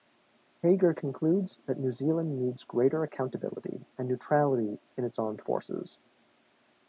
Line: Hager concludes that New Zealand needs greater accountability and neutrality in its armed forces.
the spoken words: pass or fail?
pass